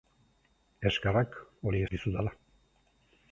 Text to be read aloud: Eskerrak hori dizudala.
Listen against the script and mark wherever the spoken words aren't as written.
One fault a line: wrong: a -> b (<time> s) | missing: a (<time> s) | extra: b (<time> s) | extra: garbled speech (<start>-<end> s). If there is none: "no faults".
no faults